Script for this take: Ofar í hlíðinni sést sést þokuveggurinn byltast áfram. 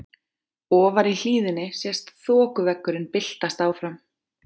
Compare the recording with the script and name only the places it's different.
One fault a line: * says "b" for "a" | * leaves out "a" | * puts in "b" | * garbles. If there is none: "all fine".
* leaves out "sést"